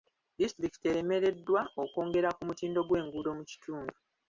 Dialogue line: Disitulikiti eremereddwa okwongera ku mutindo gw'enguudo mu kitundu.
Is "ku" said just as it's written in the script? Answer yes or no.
yes